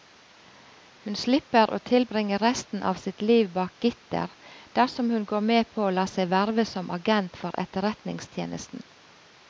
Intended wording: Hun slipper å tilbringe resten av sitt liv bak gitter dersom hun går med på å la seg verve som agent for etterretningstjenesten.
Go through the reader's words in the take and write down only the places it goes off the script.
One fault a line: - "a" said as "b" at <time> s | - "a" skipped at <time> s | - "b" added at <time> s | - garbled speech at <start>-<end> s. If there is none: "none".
none